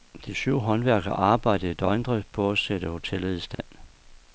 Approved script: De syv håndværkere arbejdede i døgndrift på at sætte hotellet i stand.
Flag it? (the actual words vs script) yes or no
no